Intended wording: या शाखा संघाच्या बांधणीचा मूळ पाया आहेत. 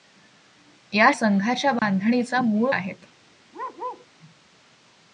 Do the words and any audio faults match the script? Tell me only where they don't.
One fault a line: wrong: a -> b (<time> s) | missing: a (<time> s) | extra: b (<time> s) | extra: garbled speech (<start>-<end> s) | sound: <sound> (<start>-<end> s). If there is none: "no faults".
missing: शाखा (1.1 s)
sound: dropout (1.8-1.8 s)
missing: पाया (2.7 s)
sound: bark (3.5-4.1 s)